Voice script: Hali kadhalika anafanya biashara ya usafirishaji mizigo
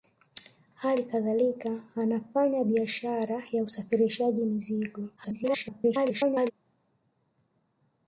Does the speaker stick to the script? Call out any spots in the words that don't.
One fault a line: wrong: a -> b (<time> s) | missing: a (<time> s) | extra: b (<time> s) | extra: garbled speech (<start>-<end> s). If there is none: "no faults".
extra: garbled speech (5.2-6.5 s)